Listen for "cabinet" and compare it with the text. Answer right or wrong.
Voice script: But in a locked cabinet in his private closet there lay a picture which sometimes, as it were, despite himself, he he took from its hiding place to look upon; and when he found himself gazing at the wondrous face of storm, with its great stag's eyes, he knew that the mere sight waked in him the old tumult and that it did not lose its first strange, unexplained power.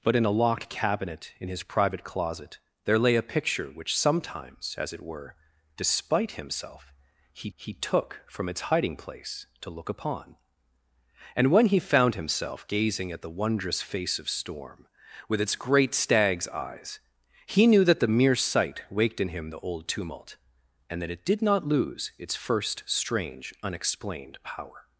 right